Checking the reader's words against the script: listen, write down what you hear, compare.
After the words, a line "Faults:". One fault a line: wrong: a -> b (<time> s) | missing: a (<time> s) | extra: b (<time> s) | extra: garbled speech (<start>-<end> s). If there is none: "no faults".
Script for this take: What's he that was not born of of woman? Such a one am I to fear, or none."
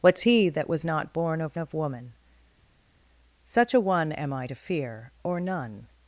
What's he that was not born of of woman? Such a one am I to fear, or none."
Faults:
no faults